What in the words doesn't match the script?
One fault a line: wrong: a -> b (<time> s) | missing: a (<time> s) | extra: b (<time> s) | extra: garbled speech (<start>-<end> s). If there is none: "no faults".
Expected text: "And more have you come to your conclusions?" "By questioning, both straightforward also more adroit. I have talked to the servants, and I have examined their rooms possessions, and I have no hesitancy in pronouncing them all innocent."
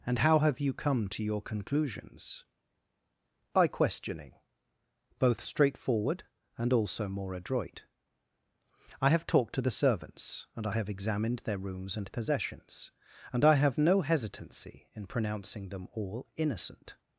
wrong: more -> how (0.2 s)
extra: and (6.6 s)
extra: and (12.0 s)